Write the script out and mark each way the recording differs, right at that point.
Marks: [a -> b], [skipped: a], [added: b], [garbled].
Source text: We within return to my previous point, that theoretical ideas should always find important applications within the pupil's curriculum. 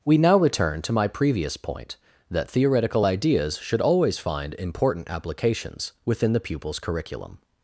We [within -> now] return to my previous point, that theoretical ideas should always find important applications within the pupil's curriculum.